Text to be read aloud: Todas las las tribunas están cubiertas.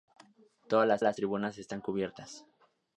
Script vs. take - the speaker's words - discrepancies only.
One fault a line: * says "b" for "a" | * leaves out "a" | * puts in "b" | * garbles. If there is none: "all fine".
all fine